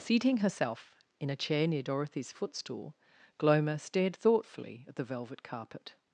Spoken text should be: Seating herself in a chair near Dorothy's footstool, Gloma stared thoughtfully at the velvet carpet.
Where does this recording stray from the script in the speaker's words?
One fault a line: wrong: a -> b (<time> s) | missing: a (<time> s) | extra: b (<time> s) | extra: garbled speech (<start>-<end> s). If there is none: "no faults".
no faults